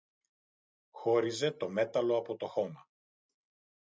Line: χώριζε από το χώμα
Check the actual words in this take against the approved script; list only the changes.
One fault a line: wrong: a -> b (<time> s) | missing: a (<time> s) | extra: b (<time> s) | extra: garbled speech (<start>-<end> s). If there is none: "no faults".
extra: το μέταλλο (1.5 s)